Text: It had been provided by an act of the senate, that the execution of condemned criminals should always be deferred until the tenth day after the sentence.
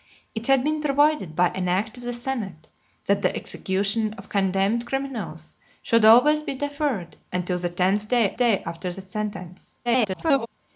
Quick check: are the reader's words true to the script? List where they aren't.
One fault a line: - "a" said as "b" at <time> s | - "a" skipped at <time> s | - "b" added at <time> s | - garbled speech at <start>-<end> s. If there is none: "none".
- "day" added at 8.4 s
- garbled speech at 9.9-10.5 s